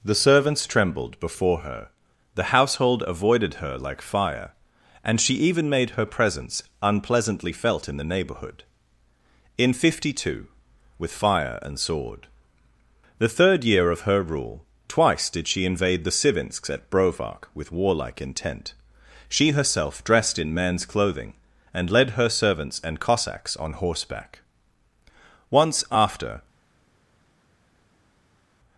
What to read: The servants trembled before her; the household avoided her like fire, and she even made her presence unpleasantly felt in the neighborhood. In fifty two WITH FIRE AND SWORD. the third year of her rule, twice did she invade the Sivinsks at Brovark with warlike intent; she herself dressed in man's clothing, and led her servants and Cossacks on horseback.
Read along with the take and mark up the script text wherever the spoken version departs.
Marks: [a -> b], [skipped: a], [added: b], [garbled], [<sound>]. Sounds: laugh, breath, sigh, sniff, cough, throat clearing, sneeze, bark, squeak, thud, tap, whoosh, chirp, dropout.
The servants trembled before her; the household avoided her like fire, and she even made her presence unpleasantly felt in the neighborhood. In fifty two WITH FIRE AND SWORD. the third year of her rule, twice did she invade the Sivinsks at Brovark with warlike intent; she herself dressed in man's clothing, and led her servants and Cossacks on horseback. [added: Once after]